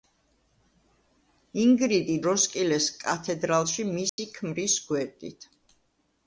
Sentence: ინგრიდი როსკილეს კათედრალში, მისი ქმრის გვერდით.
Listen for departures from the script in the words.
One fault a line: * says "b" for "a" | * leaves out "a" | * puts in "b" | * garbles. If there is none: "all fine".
all fine